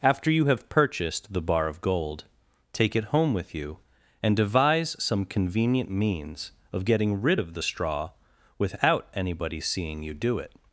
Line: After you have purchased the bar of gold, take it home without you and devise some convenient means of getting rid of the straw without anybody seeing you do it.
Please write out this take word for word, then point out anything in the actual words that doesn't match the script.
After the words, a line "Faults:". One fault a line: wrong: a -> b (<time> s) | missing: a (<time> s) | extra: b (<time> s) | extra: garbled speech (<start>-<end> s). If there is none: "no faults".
After you have purchased the bar of gold, take it home with you and devise some convenient means of getting rid of the straw without anybody seeing you do it.
Faults:
wrong: without -> with (3.3 s)